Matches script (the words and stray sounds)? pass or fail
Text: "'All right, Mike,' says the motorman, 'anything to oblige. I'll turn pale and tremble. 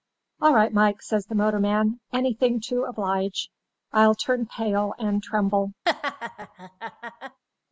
fail